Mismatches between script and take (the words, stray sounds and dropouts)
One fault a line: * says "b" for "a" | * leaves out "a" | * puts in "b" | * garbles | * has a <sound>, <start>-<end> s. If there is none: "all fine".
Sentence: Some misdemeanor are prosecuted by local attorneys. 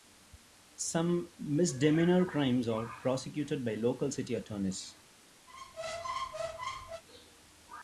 * puts in "crimes"
* puts in "city"
* has a squeak, 5.5-7.0 s